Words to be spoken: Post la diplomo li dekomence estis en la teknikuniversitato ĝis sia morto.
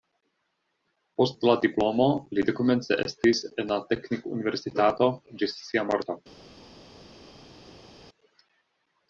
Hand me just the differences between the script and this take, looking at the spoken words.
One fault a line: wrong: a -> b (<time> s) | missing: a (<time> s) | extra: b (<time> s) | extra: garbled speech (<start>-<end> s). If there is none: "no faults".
no faults